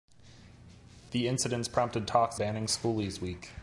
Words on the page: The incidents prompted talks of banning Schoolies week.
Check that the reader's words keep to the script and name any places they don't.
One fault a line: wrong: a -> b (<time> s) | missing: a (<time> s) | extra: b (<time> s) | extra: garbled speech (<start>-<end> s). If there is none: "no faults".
missing: of (2.4 s)